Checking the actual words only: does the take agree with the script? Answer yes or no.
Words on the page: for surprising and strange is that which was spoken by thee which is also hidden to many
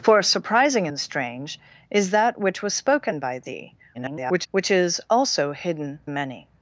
no